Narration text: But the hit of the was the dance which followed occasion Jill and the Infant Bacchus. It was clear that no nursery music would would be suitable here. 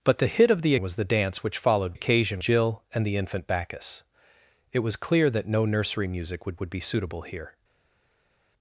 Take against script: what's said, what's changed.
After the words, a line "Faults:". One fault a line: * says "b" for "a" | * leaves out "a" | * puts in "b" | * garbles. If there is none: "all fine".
But the hit of the was the dance which followed occasion Jill and the Infant Bacchus. It was clear that no nursery music would would be suitable here.
Faults:
all fine